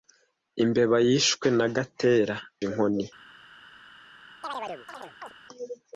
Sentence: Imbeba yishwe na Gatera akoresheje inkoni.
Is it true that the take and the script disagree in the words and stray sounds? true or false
true